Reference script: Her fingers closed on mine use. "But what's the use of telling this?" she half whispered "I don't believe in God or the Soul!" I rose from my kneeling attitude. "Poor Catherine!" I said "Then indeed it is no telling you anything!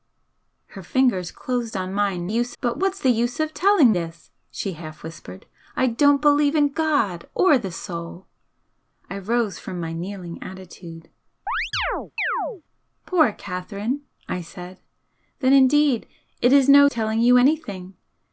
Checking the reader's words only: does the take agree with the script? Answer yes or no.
yes